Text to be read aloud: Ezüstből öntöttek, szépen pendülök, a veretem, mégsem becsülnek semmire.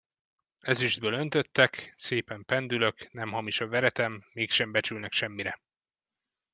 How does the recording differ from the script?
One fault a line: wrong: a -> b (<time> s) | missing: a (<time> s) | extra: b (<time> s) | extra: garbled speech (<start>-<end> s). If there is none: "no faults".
extra: nem hamis (3.1 s)